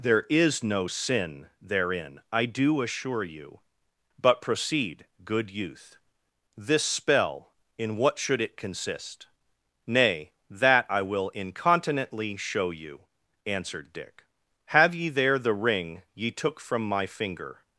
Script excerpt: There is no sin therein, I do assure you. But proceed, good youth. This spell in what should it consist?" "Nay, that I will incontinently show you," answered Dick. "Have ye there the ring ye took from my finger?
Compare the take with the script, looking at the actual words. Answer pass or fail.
pass